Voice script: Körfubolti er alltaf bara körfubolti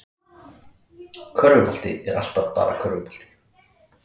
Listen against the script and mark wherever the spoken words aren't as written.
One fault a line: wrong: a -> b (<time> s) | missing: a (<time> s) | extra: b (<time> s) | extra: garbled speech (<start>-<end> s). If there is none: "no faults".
no faults